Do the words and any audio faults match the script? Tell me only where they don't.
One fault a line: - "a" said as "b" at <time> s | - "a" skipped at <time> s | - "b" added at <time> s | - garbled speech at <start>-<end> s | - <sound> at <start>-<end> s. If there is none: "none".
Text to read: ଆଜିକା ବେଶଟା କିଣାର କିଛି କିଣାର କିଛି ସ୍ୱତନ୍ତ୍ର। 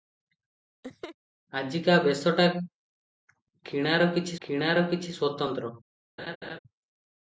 - laugh at 0.8-1.2 s
- laugh at 6.2-6.6 s